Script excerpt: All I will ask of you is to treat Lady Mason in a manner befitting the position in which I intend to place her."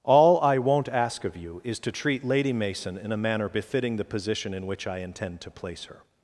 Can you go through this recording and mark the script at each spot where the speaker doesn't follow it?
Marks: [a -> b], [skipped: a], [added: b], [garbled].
All I [will -> won't] ask of you is to treat Lady Mason in a manner befitting the position in which I intend to place her."